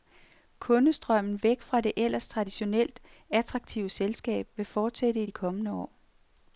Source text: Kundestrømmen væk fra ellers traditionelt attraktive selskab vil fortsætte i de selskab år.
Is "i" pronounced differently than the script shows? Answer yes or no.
no